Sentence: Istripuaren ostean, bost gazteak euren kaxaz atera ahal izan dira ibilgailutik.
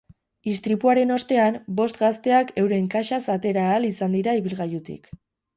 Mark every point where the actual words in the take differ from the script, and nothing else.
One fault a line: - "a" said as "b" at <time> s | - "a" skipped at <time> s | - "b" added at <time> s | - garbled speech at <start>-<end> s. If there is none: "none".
none